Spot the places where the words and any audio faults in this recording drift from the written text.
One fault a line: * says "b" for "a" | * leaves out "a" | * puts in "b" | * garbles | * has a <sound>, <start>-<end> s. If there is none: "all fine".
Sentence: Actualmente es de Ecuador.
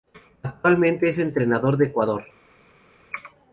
* puts in "entrenador"